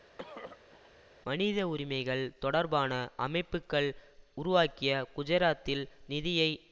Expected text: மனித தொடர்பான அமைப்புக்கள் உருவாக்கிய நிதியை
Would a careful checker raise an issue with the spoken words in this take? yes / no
yes